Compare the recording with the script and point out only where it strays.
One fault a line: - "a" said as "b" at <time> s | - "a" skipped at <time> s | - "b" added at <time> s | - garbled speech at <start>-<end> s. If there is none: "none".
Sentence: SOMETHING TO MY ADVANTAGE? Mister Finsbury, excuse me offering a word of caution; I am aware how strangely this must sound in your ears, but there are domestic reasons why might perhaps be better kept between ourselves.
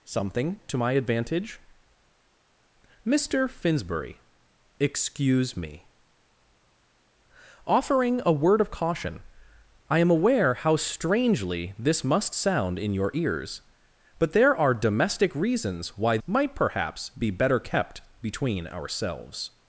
none